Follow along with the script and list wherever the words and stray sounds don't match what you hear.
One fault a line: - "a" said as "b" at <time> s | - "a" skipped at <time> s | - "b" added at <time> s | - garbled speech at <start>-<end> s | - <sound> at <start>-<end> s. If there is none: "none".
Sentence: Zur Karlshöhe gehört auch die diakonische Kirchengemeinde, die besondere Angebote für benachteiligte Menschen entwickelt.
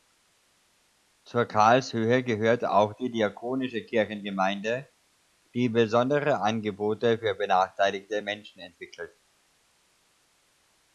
none